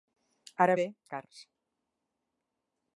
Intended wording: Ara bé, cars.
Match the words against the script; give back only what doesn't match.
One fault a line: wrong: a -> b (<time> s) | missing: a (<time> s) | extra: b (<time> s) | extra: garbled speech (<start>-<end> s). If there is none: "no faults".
no faults